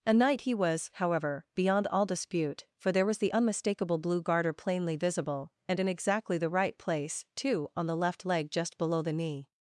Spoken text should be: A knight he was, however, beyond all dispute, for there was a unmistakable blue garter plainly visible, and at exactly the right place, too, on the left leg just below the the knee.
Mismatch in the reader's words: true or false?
true